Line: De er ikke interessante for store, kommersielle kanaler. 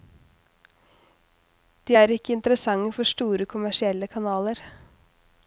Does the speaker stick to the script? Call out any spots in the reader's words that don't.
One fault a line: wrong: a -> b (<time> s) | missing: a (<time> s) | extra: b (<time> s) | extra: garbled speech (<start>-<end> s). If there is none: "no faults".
no faults